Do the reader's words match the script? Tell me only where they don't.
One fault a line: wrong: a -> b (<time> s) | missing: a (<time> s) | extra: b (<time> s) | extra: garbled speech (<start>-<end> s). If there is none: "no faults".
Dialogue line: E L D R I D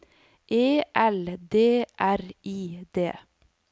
no faults